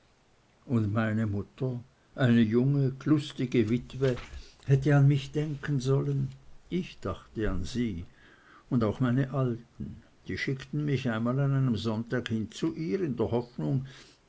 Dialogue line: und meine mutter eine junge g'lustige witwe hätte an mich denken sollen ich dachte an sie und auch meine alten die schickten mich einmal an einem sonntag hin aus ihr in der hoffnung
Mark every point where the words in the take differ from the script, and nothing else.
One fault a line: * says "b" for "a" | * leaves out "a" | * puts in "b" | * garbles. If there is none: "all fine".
* says "zu" for "aus"